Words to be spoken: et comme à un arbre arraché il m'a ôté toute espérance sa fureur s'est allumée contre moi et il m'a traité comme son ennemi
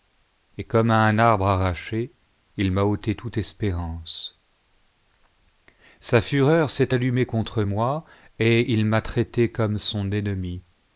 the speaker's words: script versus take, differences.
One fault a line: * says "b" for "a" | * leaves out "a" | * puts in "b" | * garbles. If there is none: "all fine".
all fine